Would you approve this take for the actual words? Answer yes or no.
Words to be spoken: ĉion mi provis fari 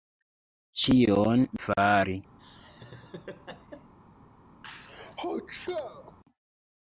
no